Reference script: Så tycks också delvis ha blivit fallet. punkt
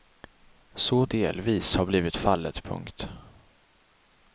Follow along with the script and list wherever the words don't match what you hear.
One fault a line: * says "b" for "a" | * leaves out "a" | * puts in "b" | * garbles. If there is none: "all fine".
* leaves out "tycks också"